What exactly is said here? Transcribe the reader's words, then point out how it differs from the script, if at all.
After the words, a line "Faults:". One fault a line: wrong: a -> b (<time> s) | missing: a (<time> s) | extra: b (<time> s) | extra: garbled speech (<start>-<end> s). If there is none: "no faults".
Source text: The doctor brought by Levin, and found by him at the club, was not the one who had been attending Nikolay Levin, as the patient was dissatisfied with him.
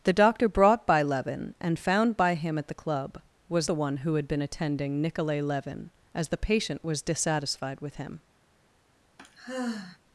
The doctor brought by Levin, and found by him at the club, was the one who had been attending Nikolay Levin, as the patient was dissatisfied with him.
Faults:
missing: not (3.7 s)